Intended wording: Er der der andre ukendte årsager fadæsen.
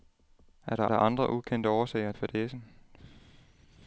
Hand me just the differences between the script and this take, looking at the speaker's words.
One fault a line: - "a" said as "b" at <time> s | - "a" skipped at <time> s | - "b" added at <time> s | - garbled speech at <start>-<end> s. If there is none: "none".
none